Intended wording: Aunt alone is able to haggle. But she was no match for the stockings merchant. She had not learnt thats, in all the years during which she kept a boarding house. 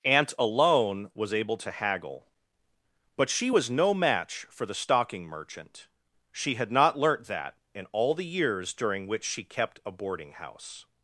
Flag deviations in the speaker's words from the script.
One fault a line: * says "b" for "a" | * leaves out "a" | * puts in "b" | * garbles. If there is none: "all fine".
* says "was" for "is"
* says "stocking" for "stockings"
* says "that" for "thats"